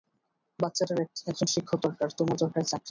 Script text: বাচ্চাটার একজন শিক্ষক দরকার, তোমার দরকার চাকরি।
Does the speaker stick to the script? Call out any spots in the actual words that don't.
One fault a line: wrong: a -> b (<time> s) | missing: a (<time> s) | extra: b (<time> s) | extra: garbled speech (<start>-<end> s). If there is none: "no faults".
no faults